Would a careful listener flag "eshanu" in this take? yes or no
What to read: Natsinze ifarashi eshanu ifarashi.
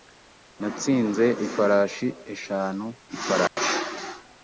no